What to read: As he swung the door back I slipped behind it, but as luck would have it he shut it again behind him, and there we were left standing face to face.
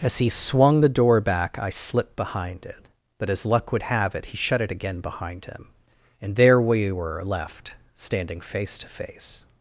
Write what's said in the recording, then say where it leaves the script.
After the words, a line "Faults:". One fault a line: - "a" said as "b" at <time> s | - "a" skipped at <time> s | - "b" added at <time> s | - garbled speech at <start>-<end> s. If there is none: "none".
As he swung the door back I slipped behind it, but as luck would have it he shut it again behind him, and there we were left standing face to face.
Faults:
none